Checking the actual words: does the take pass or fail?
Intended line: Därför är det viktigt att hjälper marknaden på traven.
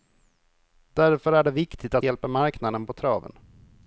pass